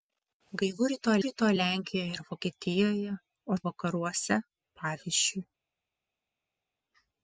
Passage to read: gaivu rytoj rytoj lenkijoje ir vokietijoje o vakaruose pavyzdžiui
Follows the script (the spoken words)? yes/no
yes